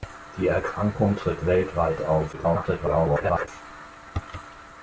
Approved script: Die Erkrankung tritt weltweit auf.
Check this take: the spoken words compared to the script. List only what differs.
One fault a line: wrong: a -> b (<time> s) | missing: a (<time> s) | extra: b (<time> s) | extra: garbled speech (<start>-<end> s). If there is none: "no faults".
extra: garbled speech (2.3-3.5 s)